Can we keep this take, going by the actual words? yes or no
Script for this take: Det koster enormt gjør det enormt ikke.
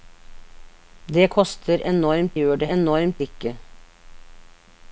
yes